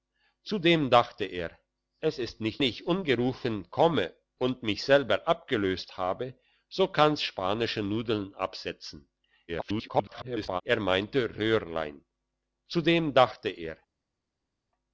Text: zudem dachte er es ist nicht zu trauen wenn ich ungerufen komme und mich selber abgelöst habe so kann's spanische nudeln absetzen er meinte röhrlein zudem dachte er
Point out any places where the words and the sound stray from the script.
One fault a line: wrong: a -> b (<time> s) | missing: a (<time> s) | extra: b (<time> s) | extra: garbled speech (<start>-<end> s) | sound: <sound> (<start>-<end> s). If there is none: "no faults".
missing: zu trauen wenn (2.6 s)
extra: garbled speech (9.5-10.6 s)